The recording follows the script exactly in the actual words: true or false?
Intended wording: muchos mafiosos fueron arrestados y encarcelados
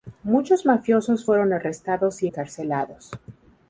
true